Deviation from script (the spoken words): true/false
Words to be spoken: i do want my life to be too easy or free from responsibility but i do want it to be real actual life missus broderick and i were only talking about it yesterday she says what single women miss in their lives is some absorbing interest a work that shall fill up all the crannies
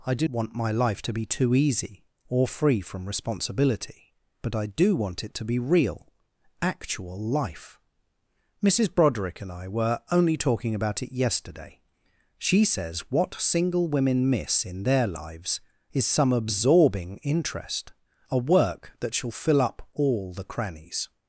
false